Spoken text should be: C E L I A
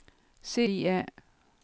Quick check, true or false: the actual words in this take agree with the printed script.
false